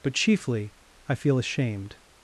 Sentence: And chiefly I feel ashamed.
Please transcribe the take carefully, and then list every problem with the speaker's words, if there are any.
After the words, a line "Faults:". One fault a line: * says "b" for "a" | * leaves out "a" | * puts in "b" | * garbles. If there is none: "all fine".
But chiefly I feel ashamed.
Faults:
* says "But" for "And"